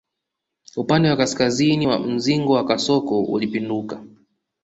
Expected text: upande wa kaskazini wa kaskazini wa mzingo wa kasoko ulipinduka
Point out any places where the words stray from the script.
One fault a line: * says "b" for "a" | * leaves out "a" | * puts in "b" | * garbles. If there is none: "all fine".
* leaves out "kaskazini wa"